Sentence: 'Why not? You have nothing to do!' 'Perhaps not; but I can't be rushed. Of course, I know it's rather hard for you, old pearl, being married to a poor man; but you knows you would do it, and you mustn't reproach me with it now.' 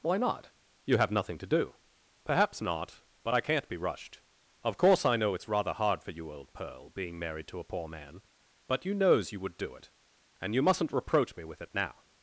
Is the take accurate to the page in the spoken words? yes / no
yes